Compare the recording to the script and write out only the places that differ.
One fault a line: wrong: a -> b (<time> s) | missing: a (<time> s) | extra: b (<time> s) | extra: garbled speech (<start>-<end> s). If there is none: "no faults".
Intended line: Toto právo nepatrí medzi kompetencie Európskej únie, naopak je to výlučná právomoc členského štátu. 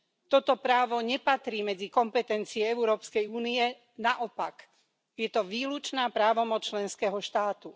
no faults